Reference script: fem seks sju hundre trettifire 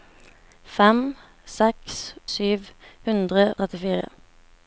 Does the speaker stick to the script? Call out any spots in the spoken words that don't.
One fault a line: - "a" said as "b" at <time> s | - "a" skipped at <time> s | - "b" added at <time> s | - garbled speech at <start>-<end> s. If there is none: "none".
none